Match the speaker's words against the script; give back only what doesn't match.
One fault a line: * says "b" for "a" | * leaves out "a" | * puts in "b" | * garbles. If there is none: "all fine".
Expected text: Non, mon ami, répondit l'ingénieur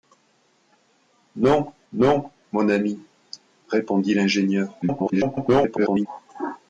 * puts in "non"
* garbles